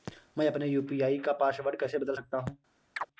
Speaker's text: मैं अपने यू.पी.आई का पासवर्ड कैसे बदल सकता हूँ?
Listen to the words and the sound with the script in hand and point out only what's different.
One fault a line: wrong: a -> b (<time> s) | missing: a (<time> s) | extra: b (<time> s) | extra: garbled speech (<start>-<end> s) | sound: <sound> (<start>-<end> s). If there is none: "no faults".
sound: chirp (3.0-3.1 s)